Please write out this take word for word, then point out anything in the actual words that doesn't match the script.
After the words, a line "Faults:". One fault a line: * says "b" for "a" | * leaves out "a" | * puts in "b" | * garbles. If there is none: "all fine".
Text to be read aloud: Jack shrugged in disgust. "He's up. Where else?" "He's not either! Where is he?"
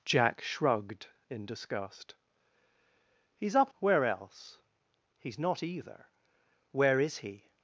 Jack shrugged in disgust. "He's up. Where else?" "He's not either! Where is he?"
Faults:
all fine